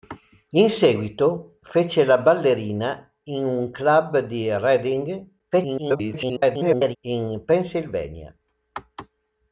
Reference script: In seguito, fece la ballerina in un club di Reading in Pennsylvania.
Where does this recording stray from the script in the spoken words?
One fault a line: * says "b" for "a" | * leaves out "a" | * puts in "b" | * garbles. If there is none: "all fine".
* garbles